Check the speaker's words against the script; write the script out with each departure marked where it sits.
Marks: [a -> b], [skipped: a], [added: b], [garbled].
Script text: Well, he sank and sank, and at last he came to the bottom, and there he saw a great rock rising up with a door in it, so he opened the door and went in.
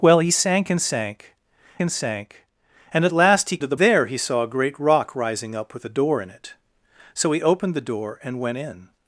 Well, he sank and sank, and [added: sank and] at last he [skipped: came] to the [skipped: bottom, and] there he saw a great rock rising up with a door in it, so he opened the door and went in.